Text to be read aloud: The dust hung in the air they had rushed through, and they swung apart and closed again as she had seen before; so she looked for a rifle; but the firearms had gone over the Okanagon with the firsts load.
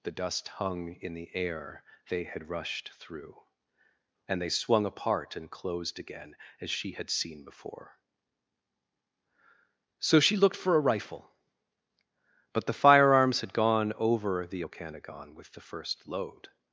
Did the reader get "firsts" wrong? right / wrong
wrong